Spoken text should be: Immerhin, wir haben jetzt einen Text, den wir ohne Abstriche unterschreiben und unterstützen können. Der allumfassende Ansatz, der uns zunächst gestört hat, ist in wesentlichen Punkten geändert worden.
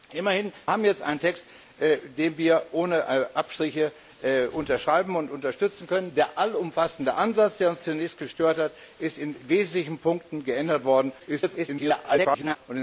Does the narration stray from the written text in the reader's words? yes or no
yes